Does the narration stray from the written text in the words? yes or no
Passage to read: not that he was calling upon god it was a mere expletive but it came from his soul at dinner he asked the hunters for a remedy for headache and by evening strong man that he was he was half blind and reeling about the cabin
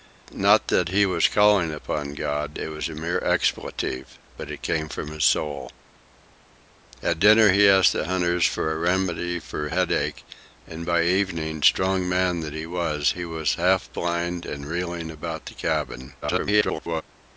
yes